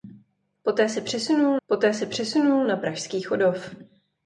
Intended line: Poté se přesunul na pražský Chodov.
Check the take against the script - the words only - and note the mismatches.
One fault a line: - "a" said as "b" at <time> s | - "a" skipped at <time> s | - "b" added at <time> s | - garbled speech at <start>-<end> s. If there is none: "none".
- "poté se přesunul" added at 1.7 s